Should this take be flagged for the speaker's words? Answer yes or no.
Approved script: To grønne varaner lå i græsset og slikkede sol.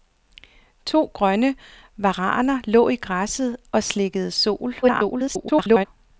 yes